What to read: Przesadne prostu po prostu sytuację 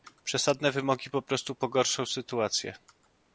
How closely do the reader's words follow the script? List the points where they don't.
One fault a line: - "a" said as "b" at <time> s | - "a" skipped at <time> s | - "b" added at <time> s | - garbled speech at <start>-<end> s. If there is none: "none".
- "prostu" said as "wymogi" at 0.7 s
- "pogorszą" added at 1.6 s